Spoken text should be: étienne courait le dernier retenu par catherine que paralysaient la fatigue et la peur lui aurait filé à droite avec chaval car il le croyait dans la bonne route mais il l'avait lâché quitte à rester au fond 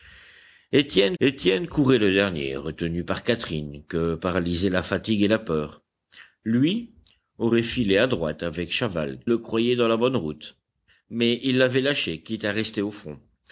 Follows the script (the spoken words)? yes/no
no